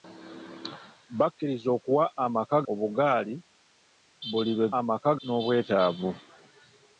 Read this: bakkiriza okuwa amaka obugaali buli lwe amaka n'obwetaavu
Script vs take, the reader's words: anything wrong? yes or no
no